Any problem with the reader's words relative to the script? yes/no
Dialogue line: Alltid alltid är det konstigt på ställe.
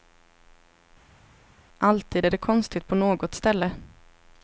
yes